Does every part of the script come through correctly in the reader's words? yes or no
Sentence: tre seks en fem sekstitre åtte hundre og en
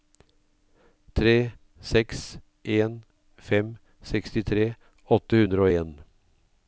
yes